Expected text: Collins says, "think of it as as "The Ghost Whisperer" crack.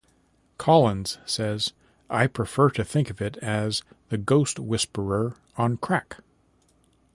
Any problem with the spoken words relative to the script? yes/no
yes